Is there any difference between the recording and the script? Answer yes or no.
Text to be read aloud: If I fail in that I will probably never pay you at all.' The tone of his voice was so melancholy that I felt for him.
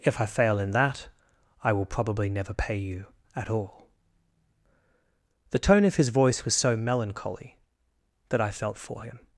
no